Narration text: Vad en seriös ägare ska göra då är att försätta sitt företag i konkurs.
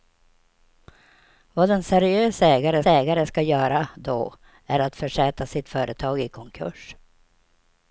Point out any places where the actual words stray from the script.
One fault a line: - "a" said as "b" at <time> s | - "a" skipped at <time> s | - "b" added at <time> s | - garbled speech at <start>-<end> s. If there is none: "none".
- "ägare" added at 2.9 s